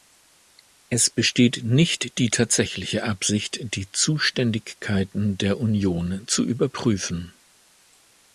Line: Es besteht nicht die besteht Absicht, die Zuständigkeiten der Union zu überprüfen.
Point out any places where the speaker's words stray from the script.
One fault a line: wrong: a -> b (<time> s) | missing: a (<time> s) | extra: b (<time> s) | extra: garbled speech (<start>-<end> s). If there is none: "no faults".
wrong: besteht -> tatsächliche (2.3 s)